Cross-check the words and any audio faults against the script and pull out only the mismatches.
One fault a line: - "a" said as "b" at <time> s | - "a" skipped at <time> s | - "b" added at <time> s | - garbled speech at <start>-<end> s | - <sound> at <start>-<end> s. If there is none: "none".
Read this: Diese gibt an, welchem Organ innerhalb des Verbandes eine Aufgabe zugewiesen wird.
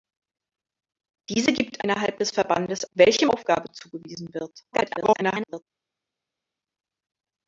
- "an welchem Organ" skipped at 1.9 s
- "eine" said as "welchem" at 2.9 s
- garbled speech at 4.7-5.6 s